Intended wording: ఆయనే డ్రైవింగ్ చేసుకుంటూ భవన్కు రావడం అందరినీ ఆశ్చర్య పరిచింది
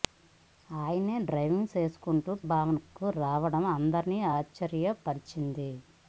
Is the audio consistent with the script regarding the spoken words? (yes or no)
yes